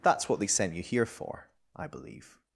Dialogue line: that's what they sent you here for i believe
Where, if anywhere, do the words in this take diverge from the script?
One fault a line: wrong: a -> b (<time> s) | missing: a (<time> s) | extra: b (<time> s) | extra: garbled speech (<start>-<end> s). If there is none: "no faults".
no faults